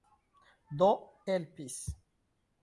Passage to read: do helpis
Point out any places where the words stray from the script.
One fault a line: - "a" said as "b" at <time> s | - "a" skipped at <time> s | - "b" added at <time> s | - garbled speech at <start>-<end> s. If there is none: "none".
none